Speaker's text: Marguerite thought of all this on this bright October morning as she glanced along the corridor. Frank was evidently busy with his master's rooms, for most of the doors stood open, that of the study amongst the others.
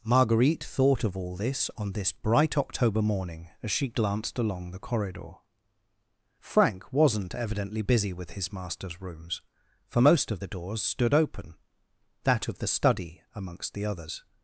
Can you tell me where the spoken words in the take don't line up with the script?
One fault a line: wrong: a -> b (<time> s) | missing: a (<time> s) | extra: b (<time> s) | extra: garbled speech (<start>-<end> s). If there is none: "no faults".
wrong: was -> wasn't (6.9 s)